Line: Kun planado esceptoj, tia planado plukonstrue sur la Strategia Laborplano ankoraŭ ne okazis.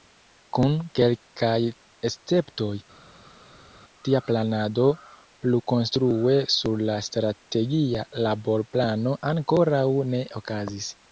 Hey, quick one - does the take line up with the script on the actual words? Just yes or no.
no